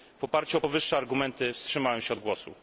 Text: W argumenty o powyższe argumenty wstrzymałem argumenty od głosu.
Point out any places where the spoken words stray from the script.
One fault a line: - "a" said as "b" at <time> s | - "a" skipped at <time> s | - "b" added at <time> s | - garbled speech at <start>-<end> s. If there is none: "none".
- "argumenty" said as "oparciu" at 0.2 s
- "argumenty" said as "się" at 2.0 s